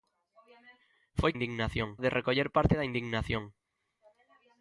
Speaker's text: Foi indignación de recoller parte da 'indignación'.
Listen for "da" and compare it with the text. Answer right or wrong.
right